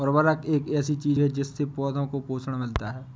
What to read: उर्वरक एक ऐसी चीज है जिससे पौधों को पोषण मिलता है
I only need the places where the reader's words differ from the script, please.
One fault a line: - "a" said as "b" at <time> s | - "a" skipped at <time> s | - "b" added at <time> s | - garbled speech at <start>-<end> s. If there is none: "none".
none